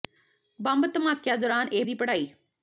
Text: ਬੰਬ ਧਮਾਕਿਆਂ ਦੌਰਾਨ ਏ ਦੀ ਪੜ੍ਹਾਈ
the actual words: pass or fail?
pass